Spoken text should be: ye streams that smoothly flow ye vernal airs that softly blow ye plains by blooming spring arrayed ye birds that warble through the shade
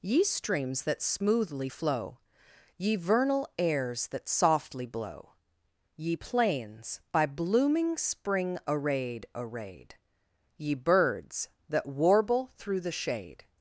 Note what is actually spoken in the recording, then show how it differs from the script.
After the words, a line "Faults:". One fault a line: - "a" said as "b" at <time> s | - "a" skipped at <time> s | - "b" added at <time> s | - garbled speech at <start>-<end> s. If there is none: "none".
ye streams that smoothly flow ye vernal airs that softly blow ye plains by blooming spring arrayed arrayed ye birds that warble through the shade
Faults:
- "arrayed" added at 9.3 s